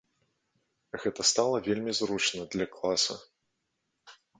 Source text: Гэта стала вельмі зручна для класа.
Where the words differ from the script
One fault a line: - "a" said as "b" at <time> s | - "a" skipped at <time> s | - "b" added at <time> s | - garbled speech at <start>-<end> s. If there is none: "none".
none